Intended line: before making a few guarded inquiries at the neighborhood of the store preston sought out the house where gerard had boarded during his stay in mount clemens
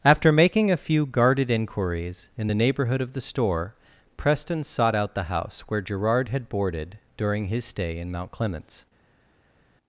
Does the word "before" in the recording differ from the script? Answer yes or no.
yes